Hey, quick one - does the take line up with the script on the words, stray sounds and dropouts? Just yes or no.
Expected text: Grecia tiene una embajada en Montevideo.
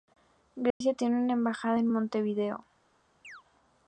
no